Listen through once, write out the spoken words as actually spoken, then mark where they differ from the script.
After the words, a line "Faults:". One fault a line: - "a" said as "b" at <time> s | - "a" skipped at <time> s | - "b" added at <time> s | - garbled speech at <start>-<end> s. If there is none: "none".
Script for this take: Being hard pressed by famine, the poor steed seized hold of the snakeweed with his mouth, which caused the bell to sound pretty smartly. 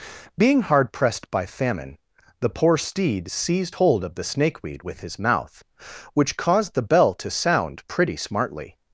Being hard pressed by famine, the poor steed seized hold of the snakeweed with his mouth, which caused the bell to sound pretty smartly.
Faults:
none